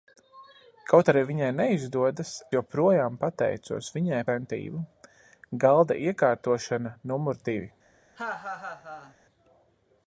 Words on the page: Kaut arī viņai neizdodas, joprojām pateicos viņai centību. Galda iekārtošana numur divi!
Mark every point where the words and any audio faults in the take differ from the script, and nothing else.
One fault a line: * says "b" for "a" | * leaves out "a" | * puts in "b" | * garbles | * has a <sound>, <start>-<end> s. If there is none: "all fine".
* has a laugh, 8.2-9.2 s